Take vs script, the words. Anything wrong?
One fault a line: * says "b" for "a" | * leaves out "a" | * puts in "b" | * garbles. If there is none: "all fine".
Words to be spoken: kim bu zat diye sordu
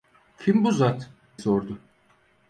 * leaves out "diye"